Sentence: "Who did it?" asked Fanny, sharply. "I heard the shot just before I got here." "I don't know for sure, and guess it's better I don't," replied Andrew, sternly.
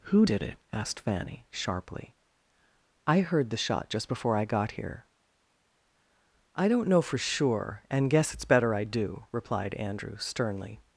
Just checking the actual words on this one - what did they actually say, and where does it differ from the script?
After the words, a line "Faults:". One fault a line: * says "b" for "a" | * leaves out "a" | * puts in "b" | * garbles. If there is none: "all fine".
"Who did it?" asked Fanny, sharply. "I heard the shot just before I got here." "I don't know for sure, and guess it's better I do," replied Andrew, sternly.
Faults:
* says "do" for "don't"